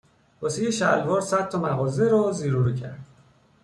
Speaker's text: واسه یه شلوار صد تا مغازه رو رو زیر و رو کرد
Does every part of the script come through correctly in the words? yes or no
no